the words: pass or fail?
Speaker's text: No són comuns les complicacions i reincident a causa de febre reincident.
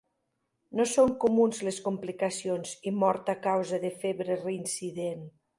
fail